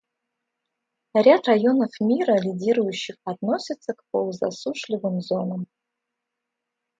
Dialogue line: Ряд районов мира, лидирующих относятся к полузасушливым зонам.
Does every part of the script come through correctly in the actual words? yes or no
yes